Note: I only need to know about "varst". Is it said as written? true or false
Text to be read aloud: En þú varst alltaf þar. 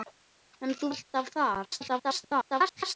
false